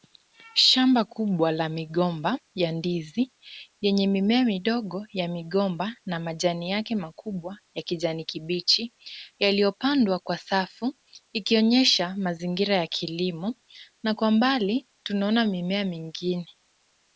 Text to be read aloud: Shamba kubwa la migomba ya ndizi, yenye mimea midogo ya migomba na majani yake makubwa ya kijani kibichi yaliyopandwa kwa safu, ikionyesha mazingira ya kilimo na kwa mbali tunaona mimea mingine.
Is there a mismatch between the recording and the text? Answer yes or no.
no